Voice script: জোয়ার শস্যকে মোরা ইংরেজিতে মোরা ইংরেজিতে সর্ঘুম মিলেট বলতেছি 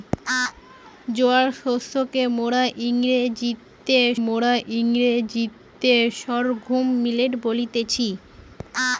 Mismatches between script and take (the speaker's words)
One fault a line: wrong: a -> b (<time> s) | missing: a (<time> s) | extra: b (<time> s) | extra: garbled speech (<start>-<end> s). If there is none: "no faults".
no faults